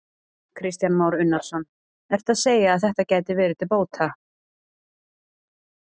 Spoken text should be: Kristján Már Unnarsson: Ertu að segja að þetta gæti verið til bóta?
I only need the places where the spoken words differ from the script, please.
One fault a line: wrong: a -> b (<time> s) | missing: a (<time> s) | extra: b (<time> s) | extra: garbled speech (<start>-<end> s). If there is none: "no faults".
no faults